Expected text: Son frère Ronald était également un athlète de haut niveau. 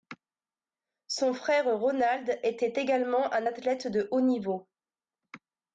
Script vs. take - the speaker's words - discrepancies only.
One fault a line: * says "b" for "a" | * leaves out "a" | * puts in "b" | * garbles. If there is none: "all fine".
all fine